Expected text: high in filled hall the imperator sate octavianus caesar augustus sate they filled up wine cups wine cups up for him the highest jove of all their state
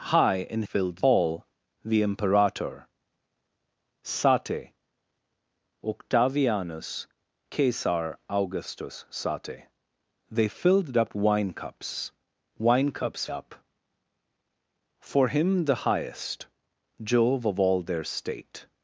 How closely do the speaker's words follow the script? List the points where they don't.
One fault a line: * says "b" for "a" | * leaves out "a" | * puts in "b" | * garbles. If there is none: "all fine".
all fine